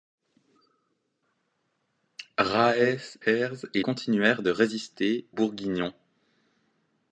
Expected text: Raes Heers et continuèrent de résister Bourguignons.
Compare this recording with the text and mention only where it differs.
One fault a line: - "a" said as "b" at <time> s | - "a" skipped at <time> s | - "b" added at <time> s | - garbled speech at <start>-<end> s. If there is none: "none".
none